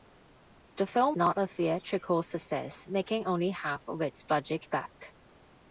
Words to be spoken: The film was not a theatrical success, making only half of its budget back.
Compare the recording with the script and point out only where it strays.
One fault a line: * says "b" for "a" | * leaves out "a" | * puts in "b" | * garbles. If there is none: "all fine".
* leaves out "was"